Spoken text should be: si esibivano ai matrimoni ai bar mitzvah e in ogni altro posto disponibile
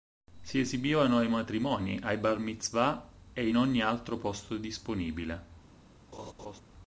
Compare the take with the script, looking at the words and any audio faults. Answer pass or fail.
fail